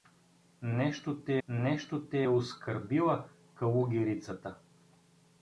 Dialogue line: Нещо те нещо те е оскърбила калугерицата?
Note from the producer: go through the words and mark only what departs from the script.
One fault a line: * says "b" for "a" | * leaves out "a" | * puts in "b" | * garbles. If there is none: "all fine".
all fine